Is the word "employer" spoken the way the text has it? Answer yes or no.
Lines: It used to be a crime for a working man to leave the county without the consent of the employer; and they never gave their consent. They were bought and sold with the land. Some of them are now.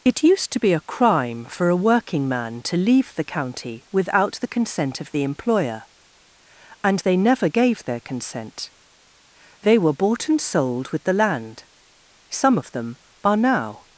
yes